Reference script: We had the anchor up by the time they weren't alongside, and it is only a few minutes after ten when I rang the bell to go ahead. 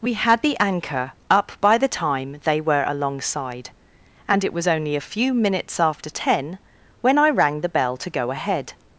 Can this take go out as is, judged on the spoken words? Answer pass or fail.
fail